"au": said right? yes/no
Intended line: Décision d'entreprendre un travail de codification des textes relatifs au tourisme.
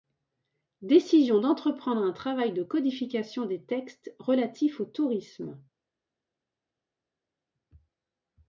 yes